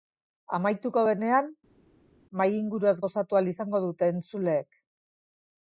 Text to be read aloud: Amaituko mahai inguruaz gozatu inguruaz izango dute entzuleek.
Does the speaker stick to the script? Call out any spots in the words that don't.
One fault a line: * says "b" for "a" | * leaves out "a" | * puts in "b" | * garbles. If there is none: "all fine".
* puts in "denean"
* says "ahal" for "inguruaz"